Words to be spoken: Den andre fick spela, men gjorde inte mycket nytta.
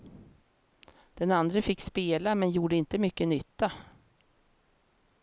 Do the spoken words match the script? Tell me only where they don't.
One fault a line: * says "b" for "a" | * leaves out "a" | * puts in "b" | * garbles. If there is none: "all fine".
all fine